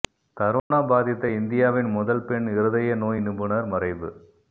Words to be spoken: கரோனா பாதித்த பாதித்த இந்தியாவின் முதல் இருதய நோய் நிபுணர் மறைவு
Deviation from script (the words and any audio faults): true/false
true